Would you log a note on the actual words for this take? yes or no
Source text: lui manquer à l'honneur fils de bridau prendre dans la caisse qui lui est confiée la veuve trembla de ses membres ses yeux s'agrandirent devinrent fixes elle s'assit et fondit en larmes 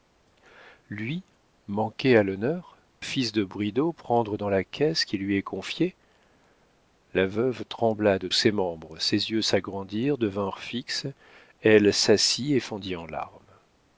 no